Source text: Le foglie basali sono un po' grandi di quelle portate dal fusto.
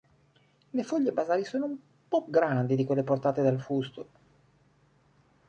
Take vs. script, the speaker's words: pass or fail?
pass